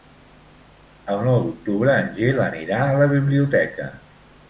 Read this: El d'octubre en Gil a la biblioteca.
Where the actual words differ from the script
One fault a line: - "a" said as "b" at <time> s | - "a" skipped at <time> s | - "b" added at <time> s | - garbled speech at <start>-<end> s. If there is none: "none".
- "nou" added at 1.3 s
- "anirà" added at 2.5 s